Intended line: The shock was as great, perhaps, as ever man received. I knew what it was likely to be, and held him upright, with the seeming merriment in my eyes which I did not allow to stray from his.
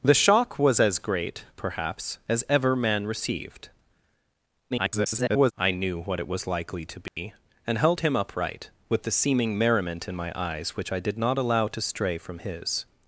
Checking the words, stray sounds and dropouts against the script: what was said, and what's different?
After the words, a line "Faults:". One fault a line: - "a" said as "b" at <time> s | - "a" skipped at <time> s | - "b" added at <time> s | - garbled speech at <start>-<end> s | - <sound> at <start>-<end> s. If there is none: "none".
The shock was as great, perhaps, as ever man received. [garbled] I knew what it was likely to be, and held him upright, with the seeming merriment in my eyes which I did not allow to stray from his.
Faults:
- garbled speech at 4.7-5.5 s
- dropout at 7.1-7.2 s